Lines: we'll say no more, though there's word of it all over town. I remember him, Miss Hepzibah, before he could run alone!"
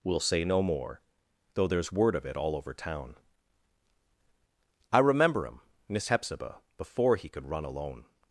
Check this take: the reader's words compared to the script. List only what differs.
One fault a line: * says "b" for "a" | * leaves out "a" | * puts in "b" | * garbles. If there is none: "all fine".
all fine